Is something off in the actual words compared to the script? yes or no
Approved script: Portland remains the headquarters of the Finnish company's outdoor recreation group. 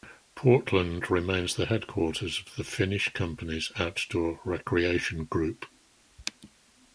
no